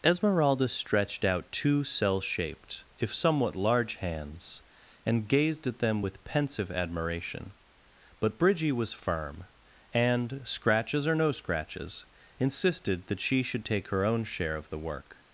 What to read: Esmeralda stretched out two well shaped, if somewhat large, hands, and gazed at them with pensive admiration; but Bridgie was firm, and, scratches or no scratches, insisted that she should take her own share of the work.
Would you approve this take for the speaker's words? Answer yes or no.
no